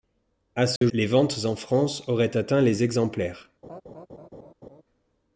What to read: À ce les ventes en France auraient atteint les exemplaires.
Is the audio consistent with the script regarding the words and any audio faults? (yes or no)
no